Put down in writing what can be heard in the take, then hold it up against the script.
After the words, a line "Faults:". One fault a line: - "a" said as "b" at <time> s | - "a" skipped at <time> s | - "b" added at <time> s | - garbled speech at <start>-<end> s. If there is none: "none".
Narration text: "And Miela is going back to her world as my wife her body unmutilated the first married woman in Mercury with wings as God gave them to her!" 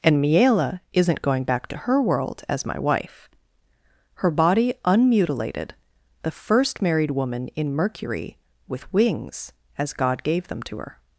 "And Miela isn't going back to her world as my wife her body unmutilated the first married woman in Mercury with wings as God gave them to her!"
Faults:
- "is" said as "isn't" at 0.9 s